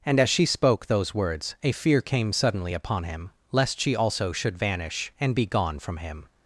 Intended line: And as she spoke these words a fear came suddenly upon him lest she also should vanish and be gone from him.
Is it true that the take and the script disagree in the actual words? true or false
true